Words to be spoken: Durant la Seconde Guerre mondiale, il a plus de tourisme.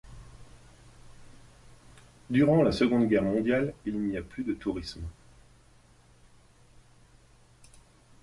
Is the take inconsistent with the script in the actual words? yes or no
yes